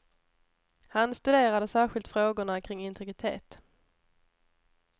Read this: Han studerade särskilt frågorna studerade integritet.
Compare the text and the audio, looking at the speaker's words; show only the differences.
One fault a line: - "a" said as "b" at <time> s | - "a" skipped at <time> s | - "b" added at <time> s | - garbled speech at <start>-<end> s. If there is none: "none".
- "studerade" said as "kring" at 2.6 s